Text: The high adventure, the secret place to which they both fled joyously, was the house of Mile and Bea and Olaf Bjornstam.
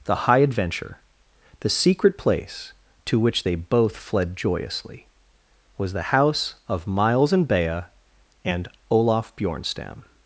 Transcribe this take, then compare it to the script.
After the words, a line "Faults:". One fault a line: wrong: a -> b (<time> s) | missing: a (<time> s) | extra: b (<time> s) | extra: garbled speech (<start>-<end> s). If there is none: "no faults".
The high adventure, the secret place to which they both fled joyously, was the house of Miles and Bea and Olaf Bjornstam.
Faults:
wrong: Mile -> Miles (6.9 s)